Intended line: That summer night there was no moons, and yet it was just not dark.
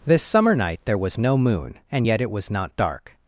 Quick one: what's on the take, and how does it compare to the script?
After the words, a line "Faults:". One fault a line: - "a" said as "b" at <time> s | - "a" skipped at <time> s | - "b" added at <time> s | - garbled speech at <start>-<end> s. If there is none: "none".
This summer night there was no moon, and yet it was not dark.
Faults:
- "That" said as "This" at 0.0 s
- "moons" said as "moon" at 1.4 s
- "just" skipped at 2.5 s